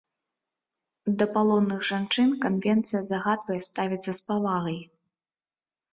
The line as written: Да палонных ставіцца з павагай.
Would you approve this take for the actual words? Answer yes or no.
no